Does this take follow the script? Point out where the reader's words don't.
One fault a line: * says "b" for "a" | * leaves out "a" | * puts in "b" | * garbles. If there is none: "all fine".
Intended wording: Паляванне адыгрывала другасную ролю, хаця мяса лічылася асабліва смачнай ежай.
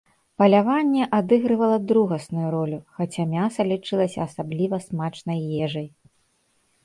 all fine